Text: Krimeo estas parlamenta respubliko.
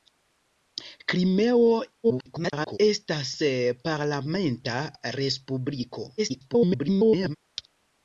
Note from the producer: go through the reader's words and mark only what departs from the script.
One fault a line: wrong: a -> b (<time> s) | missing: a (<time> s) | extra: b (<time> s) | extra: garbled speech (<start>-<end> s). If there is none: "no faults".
extra: garbled speech (2.0-2.8 s)
extra: garbled speech (6.2-7.4 s)